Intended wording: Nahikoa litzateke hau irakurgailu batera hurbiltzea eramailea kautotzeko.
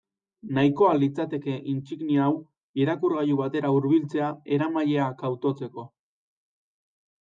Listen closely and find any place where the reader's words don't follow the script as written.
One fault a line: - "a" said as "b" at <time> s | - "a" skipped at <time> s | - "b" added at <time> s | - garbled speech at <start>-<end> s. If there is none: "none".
- "intsignia" added at 1.7 s